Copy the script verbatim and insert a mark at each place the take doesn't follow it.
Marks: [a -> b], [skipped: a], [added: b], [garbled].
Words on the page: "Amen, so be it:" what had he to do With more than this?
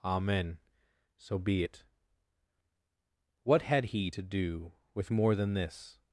"Amen, so be it:" what had he to do With more than this?